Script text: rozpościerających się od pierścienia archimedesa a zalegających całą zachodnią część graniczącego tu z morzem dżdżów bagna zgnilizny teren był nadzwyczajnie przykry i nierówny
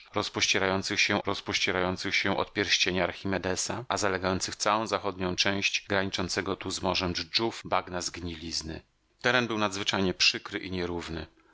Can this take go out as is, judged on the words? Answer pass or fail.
fail